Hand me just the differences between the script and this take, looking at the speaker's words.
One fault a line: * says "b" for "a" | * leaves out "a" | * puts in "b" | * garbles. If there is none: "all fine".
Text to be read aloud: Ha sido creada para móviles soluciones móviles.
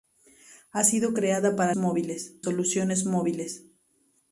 all fine